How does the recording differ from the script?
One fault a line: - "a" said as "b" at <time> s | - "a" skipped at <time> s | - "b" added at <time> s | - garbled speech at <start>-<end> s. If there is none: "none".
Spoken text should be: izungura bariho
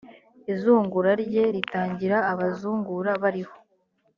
- "rye ritangira abazungura" added at 1.2 s